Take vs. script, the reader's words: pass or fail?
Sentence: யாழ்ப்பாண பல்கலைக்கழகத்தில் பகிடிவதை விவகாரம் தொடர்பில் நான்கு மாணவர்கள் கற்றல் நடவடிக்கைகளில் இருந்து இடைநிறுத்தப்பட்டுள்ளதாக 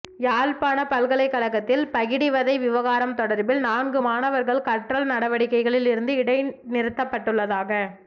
pass